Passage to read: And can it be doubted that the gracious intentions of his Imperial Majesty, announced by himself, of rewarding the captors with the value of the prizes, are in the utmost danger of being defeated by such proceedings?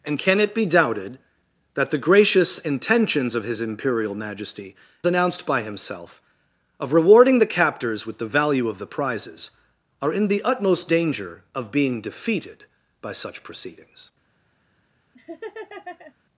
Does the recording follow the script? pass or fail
pass